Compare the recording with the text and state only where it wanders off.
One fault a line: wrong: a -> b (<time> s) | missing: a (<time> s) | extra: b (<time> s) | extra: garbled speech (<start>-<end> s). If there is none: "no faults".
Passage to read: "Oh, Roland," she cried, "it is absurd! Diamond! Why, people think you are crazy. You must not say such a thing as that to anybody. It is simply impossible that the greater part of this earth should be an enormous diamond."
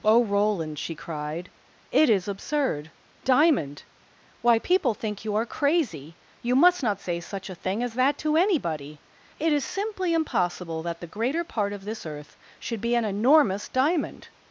no faults